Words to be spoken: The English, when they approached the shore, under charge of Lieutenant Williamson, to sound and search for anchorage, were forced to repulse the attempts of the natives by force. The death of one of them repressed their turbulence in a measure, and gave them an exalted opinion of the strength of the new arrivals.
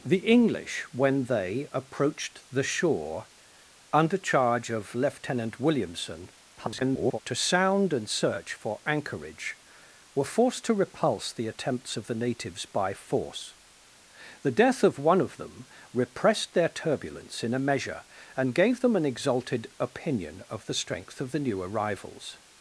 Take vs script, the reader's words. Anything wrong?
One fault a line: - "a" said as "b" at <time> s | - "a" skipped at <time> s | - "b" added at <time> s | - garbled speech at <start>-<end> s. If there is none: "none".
- garbled speech at 6.6-7.2 s